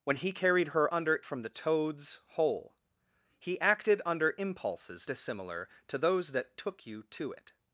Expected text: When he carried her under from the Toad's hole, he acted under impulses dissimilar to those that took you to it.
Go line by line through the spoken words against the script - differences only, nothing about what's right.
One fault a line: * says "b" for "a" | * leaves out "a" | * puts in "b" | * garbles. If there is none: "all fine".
all fine